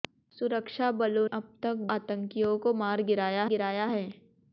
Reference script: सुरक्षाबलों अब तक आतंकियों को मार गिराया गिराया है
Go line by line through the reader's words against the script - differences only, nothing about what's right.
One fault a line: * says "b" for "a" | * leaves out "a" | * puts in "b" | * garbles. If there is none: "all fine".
all fine